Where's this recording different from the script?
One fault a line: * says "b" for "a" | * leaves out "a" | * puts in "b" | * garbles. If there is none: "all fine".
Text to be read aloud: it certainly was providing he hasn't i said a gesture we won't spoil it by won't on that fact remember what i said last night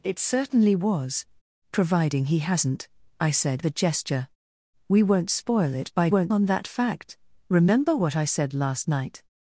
all fine